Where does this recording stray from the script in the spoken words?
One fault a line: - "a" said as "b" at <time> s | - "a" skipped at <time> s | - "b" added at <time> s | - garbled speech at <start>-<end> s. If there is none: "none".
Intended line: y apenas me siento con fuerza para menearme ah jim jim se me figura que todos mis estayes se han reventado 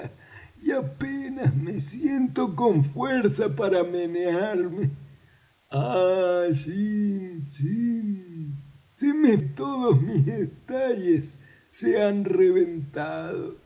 - "figura que" skipped at 9.4 s